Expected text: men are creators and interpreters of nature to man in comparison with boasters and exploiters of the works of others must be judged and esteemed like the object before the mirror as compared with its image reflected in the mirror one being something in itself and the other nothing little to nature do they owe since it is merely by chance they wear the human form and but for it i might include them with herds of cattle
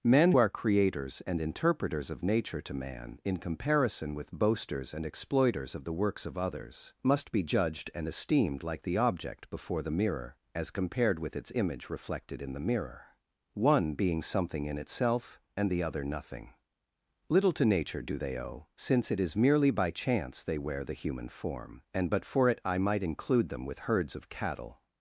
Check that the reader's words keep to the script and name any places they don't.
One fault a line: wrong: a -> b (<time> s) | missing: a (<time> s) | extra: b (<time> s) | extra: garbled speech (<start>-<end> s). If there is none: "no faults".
no faults